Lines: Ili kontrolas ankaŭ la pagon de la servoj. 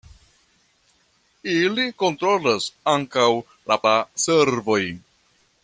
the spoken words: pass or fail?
fail